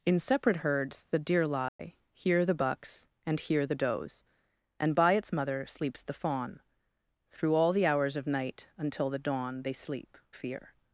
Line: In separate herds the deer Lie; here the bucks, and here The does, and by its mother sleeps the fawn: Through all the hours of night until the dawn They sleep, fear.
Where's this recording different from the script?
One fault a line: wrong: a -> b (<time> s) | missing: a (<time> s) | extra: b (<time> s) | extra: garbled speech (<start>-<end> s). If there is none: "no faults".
no faults